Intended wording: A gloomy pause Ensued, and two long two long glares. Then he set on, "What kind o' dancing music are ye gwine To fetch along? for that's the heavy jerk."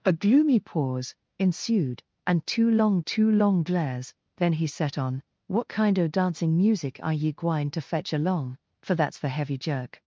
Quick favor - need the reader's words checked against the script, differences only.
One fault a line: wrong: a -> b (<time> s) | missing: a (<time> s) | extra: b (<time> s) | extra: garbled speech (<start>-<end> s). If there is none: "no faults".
no faults